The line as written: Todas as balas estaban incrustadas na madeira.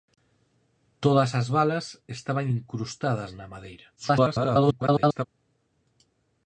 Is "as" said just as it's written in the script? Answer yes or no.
yes